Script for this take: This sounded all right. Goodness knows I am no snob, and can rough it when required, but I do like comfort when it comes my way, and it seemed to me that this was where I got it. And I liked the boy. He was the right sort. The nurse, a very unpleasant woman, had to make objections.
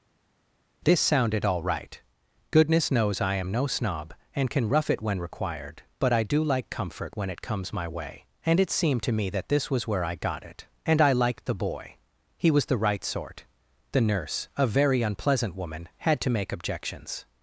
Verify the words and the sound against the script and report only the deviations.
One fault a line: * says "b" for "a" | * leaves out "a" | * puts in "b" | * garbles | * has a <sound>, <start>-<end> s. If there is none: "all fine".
all fine